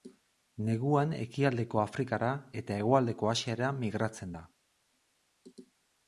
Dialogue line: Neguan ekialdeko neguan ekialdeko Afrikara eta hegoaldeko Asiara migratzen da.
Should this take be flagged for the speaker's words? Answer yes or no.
yes